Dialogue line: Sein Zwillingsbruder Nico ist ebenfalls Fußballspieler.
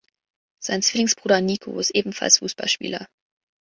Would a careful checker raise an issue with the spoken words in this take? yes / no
no